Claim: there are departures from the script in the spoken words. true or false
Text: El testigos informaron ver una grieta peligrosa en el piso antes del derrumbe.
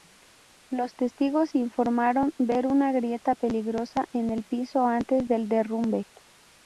true